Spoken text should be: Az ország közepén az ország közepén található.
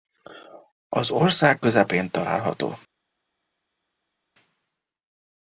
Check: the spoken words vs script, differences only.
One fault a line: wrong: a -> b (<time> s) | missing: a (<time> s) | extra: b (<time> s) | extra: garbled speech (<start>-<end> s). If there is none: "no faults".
missing: az ország közepén (2.1 s)